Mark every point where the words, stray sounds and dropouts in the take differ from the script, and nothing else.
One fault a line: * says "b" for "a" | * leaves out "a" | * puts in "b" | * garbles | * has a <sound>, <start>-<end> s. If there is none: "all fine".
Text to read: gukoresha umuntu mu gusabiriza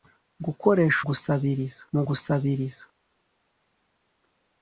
* says "gusabiriza" for "umuntu"